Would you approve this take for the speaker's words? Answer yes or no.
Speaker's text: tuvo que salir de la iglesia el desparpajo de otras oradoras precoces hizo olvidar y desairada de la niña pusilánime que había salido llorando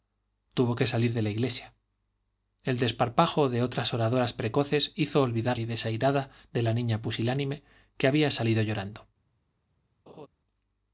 yes